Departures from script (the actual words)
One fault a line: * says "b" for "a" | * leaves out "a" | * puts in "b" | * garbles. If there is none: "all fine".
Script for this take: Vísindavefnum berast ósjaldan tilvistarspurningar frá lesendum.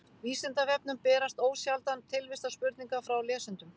all fine